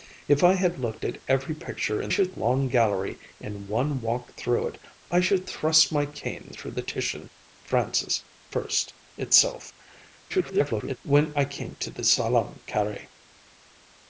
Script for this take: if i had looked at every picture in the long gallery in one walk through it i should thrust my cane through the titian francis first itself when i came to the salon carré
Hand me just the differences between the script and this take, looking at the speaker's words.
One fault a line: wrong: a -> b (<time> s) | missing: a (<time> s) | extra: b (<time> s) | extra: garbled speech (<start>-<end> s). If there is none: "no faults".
wrong: the -> should (2.1 s)
extra: garbled speech (10.3-11.0 s)